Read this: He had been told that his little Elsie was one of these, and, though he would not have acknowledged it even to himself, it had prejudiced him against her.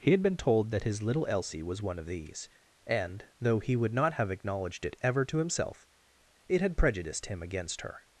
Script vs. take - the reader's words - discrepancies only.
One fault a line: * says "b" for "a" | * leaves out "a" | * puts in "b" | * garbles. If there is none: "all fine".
* says "ever" for "even"